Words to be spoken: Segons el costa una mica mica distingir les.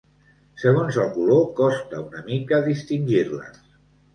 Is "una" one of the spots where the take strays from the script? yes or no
no